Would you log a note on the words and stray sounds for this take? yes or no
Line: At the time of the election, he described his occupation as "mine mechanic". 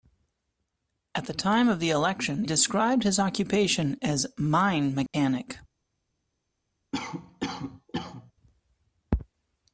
yes